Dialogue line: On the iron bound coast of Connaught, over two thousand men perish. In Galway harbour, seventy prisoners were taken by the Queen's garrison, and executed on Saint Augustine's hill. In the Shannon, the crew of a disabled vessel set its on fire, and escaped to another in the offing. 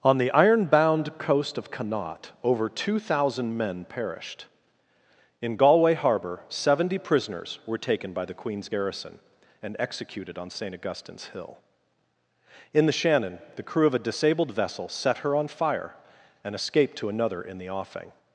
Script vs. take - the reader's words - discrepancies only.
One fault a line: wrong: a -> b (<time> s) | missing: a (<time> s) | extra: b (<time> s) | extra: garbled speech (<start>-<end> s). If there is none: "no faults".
wrong: perish -> perished (3.9 s)
wrong: its -> her (15.2 s)